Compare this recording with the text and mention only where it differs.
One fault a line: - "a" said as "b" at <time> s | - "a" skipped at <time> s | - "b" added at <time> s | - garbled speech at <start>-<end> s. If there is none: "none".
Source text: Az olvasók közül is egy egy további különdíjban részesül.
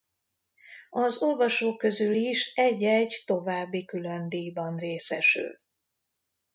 none